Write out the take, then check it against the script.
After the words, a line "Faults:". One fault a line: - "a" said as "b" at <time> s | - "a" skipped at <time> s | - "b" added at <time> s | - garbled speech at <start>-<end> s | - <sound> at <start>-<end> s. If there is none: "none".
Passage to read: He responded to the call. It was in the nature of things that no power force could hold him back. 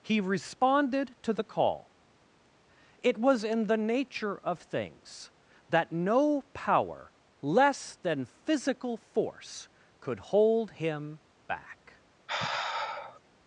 He responded to the call. It was in the nature of things that no power less than physical force could hold him back.
Faults:
- "less than physical" added at 7.4 s
- sigh at 12.3-13.2 s